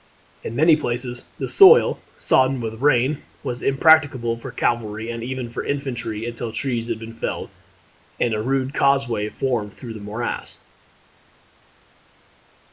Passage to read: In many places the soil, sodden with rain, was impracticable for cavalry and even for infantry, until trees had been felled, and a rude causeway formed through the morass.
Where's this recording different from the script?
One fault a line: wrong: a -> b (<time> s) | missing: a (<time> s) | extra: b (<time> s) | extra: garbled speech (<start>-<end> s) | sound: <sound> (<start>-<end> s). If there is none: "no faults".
no faults